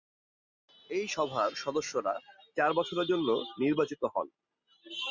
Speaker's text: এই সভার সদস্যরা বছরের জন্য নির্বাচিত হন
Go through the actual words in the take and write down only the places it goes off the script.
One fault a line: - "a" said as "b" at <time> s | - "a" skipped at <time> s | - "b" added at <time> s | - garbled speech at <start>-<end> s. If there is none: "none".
- "চার" added at 2.6 s